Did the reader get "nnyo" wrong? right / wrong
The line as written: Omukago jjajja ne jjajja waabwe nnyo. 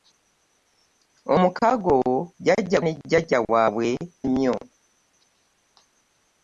right